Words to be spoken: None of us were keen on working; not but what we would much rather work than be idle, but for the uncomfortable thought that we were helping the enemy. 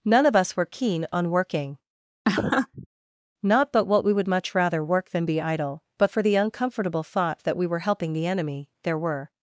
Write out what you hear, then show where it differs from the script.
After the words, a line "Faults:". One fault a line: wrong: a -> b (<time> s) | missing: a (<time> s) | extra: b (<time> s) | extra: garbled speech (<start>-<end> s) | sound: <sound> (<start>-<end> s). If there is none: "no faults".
None of us were keen on working; not but what we would much rather work than be idle, but for the uncomfortable thought that we were helping the enemy. There were
Faults:
sound: laugh (2.2-2.9 s)
extra: There were (8.8 s)